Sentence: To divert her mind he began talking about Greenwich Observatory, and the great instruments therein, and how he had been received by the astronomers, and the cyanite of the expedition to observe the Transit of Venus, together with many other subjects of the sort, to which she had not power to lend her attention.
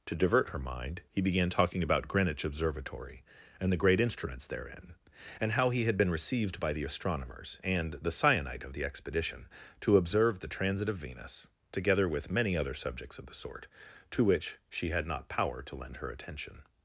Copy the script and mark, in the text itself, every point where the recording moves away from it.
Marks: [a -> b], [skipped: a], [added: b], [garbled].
To divert her mind he began talking about Greenwich Observatory, and the great instruments therein, and how he had been received by the astronomers, and the cyanite of the expedition to observe the Transit of Venus, together with many other subjects of the sort, to which she had not power to lend her attention.